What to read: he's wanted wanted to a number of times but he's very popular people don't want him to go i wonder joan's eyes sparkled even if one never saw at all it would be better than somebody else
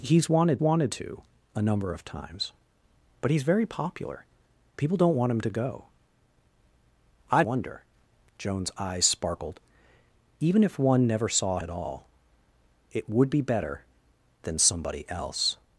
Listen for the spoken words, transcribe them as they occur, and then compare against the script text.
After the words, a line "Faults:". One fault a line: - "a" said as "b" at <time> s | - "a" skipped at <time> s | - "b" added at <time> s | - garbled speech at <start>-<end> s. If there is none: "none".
he's wanted wanted to a number of times but he's very popular people don't want him to go i wonder joan's eyes sparkled even if one never saw at all it would be better than somebody else
Faults:
none